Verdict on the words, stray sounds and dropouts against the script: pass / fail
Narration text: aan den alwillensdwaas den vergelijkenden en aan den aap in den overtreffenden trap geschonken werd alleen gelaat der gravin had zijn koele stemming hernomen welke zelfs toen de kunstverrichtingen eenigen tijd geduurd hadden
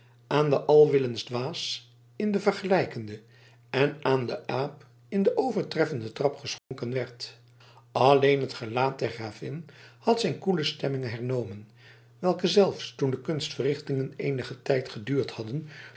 fail